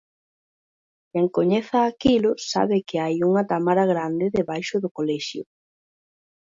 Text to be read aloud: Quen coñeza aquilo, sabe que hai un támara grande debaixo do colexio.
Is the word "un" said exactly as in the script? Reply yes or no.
no